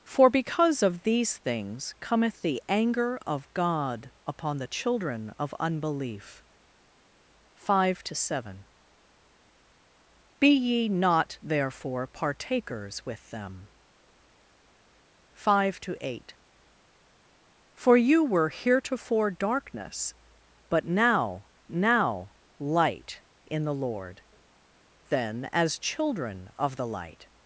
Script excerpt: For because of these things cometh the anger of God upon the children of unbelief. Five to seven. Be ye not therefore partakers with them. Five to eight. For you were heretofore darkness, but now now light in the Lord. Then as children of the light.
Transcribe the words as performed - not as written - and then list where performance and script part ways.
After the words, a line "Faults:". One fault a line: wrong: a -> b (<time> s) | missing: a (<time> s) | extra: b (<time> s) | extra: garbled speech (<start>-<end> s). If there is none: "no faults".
For because of these things cometh the anger of God upon the children of unbelief. Five to seven. Be ye not therefore partakers with them. Five to eight. For you were heretofore darkness, but now now light in the Lord. Then as children of the light.
Faults:
no faults